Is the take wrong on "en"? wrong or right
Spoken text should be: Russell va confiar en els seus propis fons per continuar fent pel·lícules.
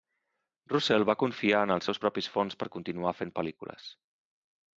right